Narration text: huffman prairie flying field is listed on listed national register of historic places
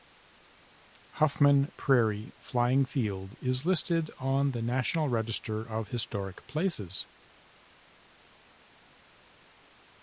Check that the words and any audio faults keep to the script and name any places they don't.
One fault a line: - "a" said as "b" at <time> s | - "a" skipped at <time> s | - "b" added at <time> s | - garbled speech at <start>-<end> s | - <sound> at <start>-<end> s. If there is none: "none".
- "listed" said as "the" at 4.5 s